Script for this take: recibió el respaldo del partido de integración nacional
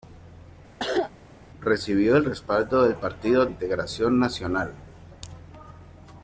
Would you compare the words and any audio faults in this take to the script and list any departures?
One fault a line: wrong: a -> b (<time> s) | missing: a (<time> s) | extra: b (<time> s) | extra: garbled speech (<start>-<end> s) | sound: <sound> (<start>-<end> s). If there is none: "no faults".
sound: cough (0.8-1.1 s)
missing: de (3.4 s)